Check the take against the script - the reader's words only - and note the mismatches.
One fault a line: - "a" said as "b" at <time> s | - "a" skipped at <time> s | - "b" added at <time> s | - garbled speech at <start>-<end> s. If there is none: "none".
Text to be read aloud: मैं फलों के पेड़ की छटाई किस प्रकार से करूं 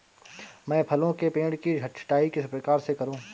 none